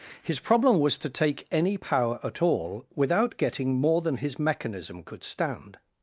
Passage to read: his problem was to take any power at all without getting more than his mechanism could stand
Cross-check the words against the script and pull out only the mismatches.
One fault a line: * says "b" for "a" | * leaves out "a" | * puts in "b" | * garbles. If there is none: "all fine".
all fine